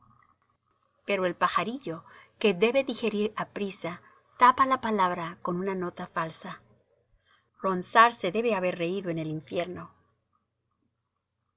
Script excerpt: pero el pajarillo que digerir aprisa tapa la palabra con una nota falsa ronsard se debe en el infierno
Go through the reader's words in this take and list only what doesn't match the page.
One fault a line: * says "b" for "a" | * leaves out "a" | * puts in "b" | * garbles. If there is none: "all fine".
* puts in "debe"
* puts in "haber reído"